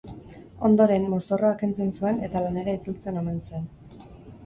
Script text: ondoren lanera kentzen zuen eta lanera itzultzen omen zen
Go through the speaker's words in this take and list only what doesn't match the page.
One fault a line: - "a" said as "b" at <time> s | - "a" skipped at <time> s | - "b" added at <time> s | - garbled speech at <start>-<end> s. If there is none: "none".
- "lanera" said as "mozorroa" at 1.1 s